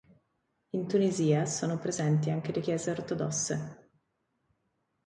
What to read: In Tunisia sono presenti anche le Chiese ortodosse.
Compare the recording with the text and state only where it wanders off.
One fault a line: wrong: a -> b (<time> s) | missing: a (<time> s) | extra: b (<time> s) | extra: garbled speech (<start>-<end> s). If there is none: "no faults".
no faults